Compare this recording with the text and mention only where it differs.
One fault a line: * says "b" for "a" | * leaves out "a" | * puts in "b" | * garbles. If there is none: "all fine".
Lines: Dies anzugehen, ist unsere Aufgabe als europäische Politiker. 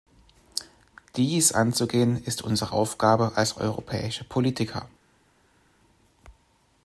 all fine